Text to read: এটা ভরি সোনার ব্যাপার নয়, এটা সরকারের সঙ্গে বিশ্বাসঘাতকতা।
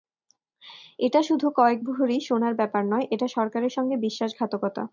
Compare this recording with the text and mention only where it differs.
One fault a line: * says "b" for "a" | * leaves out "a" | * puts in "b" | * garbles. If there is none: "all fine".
* puts in "শুধু কয়েক"